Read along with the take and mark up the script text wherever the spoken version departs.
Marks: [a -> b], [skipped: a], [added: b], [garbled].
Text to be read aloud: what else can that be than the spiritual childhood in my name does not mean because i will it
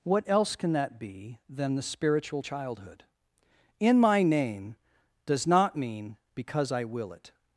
what else can that be than the spiritual childhood in my name does not mean because i will it